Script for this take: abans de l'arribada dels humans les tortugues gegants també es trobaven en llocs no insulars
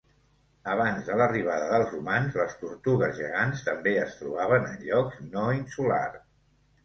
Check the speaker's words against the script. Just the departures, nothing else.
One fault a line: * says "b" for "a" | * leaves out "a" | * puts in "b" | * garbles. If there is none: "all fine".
all fine